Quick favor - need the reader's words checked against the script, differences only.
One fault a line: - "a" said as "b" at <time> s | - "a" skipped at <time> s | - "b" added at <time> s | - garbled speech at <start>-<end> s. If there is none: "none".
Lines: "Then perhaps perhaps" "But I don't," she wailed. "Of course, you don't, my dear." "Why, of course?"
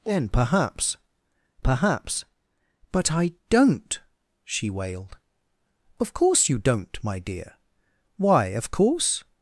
none